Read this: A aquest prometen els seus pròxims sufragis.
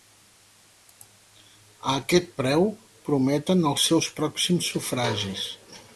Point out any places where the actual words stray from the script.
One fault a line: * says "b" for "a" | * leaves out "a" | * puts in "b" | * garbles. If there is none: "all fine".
* puts in "preu"